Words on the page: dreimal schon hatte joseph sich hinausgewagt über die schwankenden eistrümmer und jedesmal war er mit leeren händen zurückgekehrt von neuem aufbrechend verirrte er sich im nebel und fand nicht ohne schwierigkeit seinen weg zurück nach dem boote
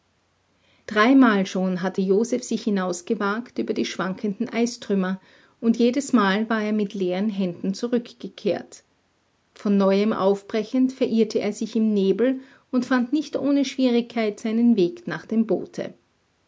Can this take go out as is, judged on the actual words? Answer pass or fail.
fail